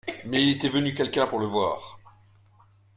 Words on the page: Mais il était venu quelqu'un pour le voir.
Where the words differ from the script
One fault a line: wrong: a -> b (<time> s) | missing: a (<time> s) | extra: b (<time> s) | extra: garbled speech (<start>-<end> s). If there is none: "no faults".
no faults